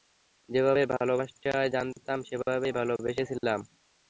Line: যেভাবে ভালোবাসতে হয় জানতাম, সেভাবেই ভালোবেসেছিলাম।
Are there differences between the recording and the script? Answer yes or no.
no